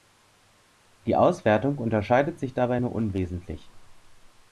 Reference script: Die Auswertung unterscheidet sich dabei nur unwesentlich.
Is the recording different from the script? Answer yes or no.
no